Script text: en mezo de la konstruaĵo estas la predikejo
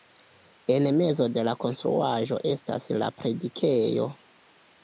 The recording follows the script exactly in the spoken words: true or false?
true